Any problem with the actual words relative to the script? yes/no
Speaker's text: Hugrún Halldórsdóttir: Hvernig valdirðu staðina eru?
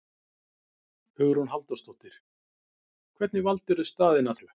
no